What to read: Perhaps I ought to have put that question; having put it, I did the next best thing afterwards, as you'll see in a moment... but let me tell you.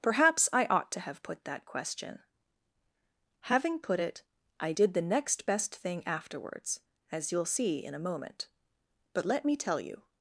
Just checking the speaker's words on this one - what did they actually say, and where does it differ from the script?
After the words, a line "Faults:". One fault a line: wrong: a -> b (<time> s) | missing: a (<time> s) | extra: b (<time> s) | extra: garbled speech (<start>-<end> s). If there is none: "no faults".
Perhaps I ought to have put that question; having put it, I did the next best thing afterwards, as you'll see in a moment... but let me tell you.
Faults:
no faults